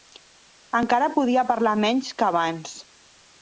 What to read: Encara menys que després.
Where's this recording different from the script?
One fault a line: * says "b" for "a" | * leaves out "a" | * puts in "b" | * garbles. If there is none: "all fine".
* puts in "podia parlar"
* says "abans" for "després"